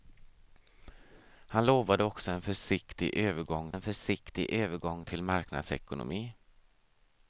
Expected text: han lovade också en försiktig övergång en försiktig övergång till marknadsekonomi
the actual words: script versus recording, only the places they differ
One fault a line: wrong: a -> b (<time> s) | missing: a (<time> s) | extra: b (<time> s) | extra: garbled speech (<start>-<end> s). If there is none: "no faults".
no faults